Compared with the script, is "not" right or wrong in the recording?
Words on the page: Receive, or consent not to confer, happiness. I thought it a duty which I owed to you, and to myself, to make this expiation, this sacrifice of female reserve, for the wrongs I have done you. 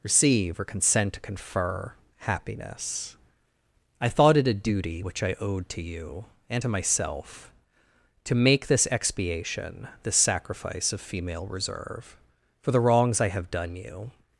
wrong